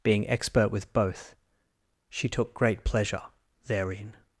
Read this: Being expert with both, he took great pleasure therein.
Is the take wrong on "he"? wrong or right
wrong